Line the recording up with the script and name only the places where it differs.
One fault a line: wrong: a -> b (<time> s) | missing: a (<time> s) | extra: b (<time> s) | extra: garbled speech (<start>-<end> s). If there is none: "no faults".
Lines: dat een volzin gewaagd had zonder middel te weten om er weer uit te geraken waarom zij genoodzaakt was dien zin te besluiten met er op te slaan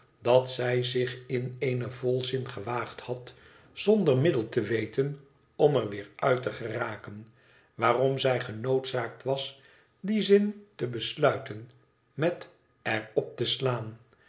extra: zij zich in (0.5 s)